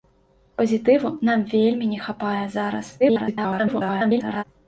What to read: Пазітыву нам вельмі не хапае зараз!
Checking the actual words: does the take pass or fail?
fail